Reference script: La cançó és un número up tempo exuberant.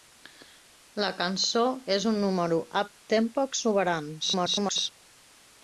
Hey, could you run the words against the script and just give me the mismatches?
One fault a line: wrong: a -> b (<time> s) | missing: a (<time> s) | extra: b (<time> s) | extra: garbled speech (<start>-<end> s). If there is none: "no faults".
extra: garbled speech (4.2-4.9 s)